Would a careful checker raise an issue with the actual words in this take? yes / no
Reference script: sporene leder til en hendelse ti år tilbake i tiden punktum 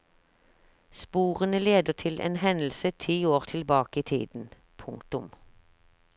no